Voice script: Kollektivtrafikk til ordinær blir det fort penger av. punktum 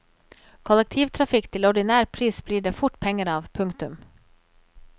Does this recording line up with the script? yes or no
no